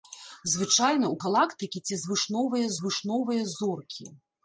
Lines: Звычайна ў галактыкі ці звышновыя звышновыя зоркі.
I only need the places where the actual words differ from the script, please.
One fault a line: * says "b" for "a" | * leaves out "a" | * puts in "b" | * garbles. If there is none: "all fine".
all fine